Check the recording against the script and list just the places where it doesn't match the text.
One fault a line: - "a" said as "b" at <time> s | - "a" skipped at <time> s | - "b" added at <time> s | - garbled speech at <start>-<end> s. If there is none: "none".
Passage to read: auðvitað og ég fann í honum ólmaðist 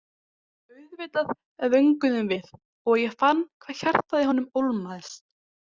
- "vönguðum við" added at 1.8 s
- "hvað hjartað" added at 3.7 s